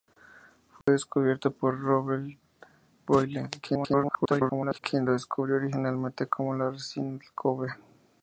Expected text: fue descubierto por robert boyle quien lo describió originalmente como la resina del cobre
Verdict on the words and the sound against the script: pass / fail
fail